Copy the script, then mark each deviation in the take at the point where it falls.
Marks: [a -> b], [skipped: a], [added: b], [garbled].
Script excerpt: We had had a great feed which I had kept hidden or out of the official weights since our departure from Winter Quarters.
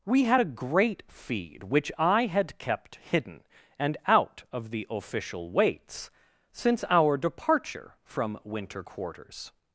We had [skipped: had] a great feed which I had kept hidden [or -> and] out of the official weights since our departure from Winter Quarters.